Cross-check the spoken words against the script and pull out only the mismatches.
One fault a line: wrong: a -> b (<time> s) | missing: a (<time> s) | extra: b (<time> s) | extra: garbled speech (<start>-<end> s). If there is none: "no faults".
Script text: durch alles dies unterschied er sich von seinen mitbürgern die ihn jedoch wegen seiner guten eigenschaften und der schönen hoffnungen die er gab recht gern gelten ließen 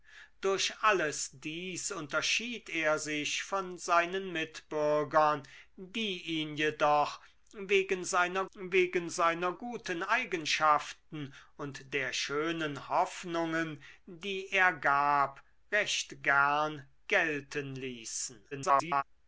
extra: wegen seiner (8.5 s)
extra: garbled speech (18.5-19.0 s)